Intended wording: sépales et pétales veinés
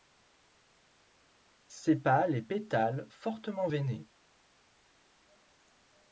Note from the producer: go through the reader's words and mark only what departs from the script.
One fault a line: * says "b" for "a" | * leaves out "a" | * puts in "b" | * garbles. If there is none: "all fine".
* puts in "fortement"